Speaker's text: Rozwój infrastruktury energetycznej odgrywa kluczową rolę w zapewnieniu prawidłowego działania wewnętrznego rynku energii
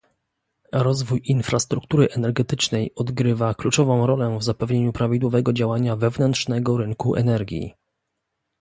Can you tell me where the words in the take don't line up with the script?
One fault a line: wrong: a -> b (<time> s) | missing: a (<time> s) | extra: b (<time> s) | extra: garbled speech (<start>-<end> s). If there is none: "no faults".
no faults